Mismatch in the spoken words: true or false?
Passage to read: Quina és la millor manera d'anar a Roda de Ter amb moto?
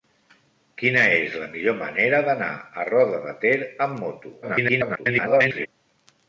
true